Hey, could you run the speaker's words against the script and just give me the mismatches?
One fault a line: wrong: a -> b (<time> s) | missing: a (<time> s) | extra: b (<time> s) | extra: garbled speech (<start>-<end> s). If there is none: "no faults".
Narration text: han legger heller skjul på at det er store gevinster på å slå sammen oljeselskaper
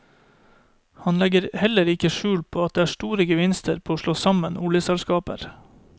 extra: ikke (1.9 s)